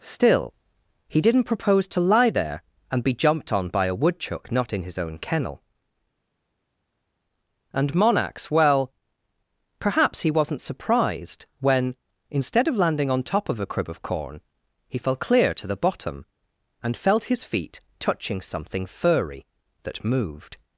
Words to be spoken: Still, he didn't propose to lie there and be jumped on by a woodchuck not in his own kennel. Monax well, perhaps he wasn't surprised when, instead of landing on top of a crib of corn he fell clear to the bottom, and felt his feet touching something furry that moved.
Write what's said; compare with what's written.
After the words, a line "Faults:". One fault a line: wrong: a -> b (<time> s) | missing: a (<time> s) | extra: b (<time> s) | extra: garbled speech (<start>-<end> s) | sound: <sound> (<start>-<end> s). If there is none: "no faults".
Still, he didn't propose to lie there and be jumped on by a woodchuck not in his own kennel. And Monax well, perhaps he wasn't surprised when, instead of landing on top of a crib of corn he fell clear to the bottom, and felt his feet touching something furry that moved.
Faults:
extra: And (7.7 s)